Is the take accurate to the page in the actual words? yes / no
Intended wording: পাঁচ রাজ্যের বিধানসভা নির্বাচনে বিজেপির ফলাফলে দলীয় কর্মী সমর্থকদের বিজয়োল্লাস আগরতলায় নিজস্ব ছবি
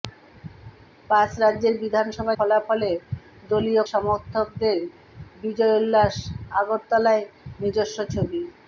no